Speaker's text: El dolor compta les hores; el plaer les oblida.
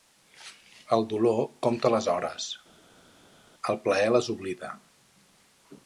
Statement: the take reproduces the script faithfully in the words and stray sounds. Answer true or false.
true